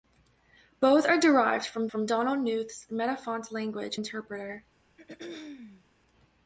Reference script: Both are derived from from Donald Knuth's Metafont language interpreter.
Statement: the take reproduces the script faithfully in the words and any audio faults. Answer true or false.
false